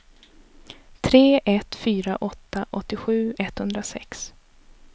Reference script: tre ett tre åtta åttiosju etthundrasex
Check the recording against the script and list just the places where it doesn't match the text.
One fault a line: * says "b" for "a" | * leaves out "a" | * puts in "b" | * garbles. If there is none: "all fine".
* says "fyra" for "tre"